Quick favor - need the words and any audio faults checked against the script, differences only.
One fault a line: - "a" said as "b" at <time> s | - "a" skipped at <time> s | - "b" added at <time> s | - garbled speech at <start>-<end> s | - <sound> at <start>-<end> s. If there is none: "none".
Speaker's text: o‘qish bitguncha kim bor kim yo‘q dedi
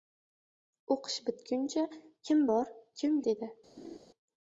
- "yo‘q" skipped at 3.2 s
- laugh at 3.8-4.0 s